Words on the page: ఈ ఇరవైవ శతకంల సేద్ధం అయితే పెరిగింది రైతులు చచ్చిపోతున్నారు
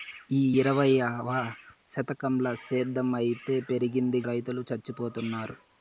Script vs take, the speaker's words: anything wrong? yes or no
no